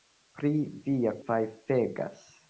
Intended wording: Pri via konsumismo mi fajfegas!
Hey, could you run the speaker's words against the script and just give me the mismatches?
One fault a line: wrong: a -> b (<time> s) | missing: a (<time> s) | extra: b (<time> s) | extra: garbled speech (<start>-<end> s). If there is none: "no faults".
missing: konsumismo mi (1.1 s)